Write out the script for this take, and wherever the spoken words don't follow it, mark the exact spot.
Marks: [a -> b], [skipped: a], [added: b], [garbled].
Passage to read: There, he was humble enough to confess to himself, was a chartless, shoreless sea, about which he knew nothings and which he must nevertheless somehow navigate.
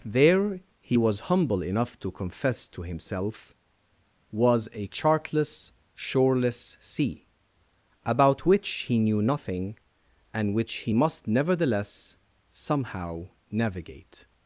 There, he was humble enough to confess to himself, was a chartless, shoreless sea, about which he knew [nothings -> nothing] and which he must nevertheless somehow navigate.